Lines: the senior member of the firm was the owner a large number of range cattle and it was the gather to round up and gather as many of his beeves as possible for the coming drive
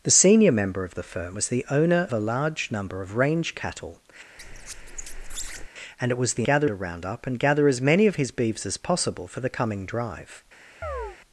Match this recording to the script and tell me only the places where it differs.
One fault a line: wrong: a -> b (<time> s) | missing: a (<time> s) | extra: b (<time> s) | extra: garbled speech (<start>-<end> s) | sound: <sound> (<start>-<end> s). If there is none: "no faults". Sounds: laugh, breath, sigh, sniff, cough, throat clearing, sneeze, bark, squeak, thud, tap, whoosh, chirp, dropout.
sound: squeak (4.4-5.7 s)
sound: chirp (10.8-11.2 s)